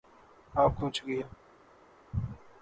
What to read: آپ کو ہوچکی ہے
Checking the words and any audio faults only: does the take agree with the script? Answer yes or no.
yes